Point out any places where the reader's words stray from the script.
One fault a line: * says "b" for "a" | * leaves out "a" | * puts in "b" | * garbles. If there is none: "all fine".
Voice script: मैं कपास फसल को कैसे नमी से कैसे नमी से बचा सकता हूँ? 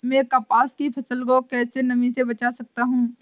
* puts in "की"
* leaves out "कैसे नमी से"